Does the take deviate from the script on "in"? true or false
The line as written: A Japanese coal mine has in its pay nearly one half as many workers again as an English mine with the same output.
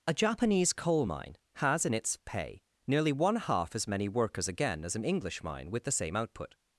false